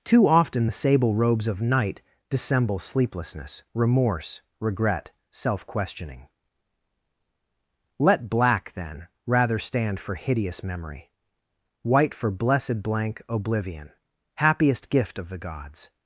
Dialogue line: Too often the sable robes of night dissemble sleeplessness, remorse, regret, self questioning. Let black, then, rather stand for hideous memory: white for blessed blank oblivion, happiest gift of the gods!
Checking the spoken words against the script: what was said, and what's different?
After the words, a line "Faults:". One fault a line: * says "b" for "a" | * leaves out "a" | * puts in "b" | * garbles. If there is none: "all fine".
Too often the sable robes of night dissemble sleeplessness, remorse, regret, self questioning. Let black, then, rather stand for hideous memory: white for blessed blank oblivion, happiest gift of the gods!
Faults:
all fine